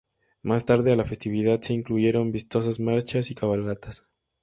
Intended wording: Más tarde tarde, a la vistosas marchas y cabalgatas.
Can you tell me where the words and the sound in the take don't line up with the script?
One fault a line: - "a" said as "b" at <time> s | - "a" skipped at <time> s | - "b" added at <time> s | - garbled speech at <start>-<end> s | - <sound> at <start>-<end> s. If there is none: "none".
- "tarde" skipped at 0.9 s
- "festividad se incluyeron" added at 1.0 s